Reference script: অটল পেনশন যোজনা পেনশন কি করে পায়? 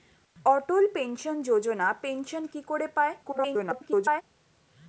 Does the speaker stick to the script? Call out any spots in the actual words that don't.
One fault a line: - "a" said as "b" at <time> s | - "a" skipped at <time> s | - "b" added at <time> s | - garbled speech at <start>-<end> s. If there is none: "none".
- garbled speech at 3.2-4.2 s